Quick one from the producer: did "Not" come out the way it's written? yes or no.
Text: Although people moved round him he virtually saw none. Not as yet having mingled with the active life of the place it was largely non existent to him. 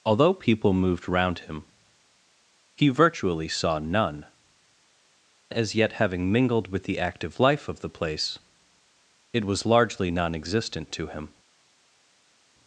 no